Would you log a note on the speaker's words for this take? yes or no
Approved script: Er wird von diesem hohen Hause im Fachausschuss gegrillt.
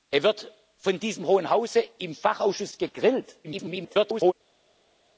yes